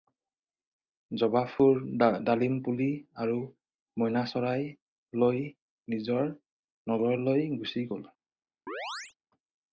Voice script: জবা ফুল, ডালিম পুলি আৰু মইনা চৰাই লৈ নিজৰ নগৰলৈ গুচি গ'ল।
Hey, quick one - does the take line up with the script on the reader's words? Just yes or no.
yes